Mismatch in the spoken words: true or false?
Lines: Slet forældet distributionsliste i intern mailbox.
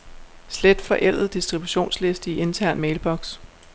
false